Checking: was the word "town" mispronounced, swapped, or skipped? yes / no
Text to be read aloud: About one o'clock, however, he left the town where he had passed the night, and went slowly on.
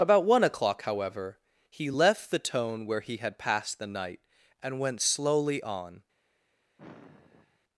yes